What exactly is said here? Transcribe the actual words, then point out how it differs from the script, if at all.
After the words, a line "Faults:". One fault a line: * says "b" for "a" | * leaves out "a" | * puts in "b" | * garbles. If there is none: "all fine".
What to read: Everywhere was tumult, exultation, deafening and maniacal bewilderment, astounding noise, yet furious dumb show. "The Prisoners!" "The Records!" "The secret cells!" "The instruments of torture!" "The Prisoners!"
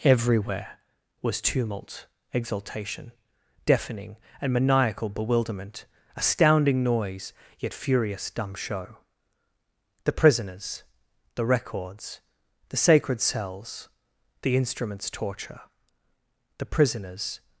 Everywhere was tumult, exultation, deafening and maniacal bewilderment, astounding noise, yet furious dumb show. "The Prisoners!" "The Records!" "The sacred cells!" "The instruments torture!" "The Prisoners!"
Faults:
* says "sacred" for "secret"
* leaves out "of"